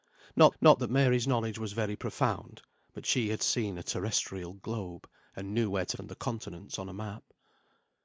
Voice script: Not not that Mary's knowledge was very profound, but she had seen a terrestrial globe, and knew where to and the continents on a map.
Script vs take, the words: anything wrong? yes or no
no